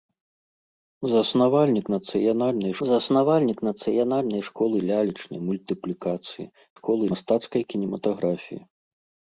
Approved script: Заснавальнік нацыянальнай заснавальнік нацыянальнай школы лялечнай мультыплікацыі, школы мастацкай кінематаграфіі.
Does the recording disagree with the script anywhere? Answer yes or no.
no